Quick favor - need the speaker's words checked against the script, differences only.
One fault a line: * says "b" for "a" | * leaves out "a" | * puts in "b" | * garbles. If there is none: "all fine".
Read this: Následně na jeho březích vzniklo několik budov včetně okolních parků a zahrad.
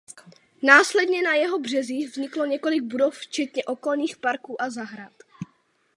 all fine